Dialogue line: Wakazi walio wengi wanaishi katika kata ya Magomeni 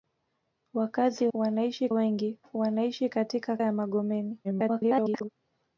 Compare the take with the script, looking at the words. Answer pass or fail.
fail